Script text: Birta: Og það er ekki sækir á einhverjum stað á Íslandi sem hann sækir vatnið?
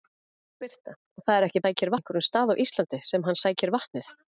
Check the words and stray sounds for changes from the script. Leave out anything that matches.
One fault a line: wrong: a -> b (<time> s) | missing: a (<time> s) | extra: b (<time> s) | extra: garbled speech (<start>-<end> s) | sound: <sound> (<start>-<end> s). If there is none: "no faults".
no faults